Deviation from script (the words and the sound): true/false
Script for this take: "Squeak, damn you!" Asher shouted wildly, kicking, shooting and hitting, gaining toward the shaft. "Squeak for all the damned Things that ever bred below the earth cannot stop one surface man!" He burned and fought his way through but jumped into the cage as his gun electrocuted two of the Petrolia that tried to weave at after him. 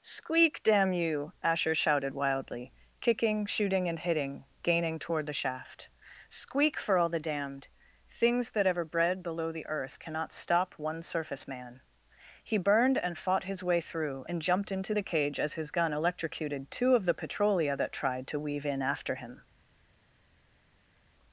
true